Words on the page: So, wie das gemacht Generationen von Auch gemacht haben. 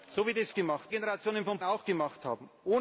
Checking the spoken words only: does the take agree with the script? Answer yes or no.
yes